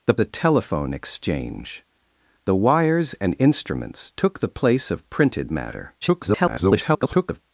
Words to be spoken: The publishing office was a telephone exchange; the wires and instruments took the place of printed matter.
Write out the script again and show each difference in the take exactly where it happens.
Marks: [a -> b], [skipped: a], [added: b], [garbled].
The [skipped: publishing office was] a telephone exchange; the wires and instruments took the place of printed matter. [garbled]